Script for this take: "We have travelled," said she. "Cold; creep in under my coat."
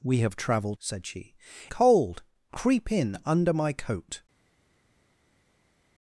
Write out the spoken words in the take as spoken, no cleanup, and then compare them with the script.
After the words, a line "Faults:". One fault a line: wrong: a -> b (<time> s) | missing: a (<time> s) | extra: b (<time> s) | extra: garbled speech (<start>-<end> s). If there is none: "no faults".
"We have travelled," said she. "Cold; creep in under my coat."
Faults:
no faults